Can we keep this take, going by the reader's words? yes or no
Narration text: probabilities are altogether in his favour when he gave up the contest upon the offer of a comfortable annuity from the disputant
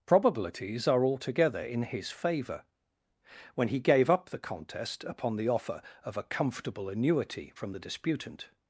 yes